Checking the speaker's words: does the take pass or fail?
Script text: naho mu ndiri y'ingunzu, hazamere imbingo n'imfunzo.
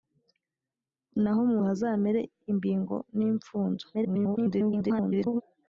fail